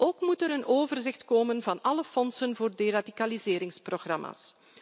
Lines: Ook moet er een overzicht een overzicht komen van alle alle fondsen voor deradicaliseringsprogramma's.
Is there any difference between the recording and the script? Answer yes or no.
yes